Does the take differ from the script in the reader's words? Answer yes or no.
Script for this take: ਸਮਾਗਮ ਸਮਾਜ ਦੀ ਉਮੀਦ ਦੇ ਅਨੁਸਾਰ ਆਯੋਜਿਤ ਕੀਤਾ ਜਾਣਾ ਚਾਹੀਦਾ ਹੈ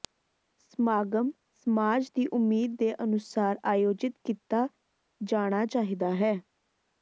no